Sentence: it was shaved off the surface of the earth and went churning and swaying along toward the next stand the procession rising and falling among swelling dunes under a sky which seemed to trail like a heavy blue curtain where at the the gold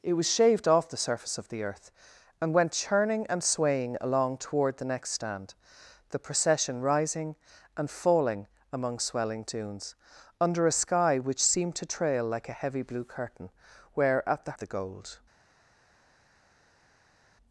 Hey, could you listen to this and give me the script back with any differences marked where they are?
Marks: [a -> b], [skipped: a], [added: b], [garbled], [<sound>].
it was shaved off the surface of the earth and went churning and swaying along toward the next stand the procession rising and falling among swelling dunes under a sky which seemed to trail like a heavy blue curtain where at the the gold